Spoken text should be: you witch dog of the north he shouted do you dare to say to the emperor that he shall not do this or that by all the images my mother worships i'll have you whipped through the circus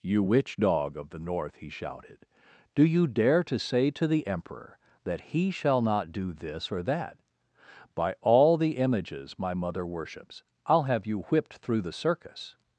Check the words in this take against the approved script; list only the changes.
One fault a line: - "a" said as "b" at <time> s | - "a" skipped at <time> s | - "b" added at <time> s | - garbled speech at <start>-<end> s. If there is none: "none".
none